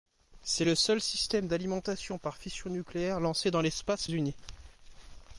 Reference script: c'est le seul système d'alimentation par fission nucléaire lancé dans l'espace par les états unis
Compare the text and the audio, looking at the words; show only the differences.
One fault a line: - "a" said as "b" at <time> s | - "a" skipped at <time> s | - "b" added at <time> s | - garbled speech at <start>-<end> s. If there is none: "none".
- "par les états" skipped at 4.1 s